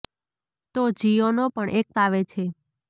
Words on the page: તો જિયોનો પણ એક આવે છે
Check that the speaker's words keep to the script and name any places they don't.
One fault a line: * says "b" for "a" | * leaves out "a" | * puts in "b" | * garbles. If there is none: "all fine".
all fine